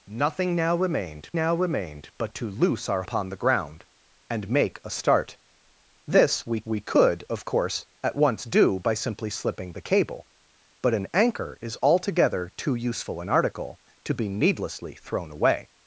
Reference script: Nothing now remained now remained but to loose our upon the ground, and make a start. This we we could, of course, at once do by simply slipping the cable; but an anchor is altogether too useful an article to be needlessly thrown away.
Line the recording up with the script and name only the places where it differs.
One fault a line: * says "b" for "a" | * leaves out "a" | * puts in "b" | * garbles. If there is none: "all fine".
all fine